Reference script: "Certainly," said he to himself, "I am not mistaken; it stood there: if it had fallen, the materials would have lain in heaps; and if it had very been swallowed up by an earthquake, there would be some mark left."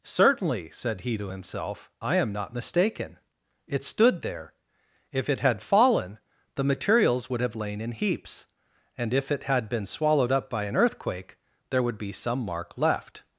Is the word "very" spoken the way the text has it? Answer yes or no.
no